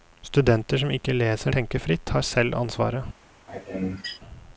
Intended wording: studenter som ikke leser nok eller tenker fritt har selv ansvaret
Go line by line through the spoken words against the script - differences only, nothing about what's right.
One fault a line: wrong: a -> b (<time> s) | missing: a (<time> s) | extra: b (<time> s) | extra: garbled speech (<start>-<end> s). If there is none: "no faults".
missing: nok eller (1.5 s)